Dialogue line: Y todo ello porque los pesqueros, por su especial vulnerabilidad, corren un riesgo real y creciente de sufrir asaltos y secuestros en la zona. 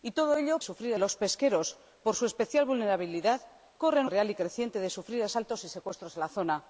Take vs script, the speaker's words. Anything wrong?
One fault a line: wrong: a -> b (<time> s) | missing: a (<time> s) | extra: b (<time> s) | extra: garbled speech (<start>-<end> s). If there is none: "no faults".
wrong: porque -> sufrir (0.6 s)
missing: un riesgo (4.1 s)